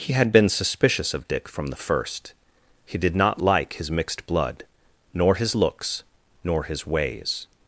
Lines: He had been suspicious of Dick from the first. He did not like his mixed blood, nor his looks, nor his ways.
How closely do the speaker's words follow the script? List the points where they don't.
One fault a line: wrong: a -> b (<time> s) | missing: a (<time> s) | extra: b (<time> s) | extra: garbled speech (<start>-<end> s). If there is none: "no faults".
no faults